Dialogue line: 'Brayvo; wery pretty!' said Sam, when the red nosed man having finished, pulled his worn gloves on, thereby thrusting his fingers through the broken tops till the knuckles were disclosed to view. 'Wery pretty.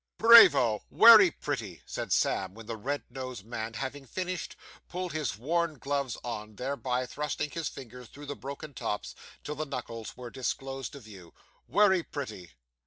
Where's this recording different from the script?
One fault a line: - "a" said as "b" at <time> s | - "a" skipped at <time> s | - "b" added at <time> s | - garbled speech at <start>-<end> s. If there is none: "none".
none